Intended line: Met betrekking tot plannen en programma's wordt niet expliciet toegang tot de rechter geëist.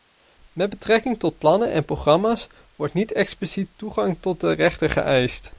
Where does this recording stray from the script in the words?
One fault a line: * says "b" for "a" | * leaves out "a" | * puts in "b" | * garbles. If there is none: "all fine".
all fine